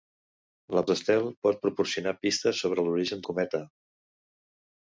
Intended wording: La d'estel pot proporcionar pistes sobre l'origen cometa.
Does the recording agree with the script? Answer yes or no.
yes